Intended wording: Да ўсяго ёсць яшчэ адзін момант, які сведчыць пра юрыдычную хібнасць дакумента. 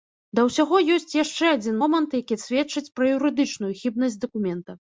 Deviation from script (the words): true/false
false